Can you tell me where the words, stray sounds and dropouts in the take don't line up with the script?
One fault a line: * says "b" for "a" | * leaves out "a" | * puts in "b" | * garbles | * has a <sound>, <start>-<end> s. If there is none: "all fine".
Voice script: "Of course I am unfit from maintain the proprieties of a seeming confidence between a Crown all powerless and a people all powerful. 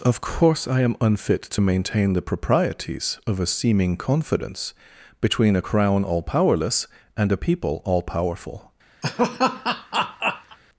* says "to" for "from"
* has a laugh, 9.0-10.6 s